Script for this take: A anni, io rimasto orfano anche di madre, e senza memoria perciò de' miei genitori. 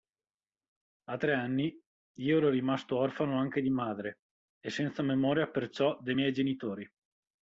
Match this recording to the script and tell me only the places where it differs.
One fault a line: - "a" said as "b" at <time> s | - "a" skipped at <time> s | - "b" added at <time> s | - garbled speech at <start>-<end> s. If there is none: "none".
- "tre" added at 1.2 s
- "ero" added at 2.4 s